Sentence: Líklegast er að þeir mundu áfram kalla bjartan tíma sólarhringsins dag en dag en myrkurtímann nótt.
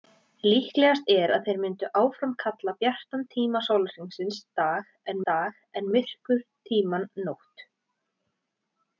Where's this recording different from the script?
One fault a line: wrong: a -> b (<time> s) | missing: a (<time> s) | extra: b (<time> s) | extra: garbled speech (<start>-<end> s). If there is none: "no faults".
no faults